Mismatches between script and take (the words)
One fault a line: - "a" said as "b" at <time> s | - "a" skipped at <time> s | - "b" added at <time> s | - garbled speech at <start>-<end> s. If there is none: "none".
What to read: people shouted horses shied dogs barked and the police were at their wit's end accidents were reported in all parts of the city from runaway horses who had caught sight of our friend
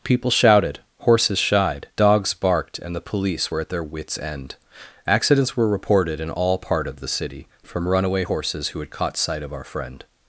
- "parts" said as "part" at 6.6 s